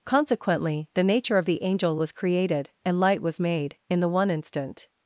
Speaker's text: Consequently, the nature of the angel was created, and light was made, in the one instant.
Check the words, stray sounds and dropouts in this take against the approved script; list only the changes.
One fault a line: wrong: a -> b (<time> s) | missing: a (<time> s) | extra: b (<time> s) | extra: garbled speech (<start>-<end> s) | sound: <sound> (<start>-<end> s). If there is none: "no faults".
no faults